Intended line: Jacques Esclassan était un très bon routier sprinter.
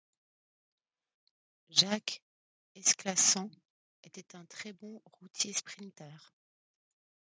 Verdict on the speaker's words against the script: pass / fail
pass